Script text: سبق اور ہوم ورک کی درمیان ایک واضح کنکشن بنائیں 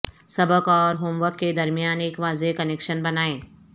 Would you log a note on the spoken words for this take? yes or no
yes